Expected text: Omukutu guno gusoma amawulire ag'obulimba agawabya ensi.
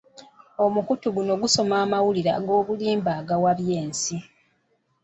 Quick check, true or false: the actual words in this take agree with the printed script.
true